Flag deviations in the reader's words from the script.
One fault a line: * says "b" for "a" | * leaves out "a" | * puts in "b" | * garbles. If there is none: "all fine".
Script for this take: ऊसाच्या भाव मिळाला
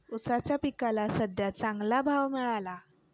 * puts in "पिकाला सद्ध्या चांगला"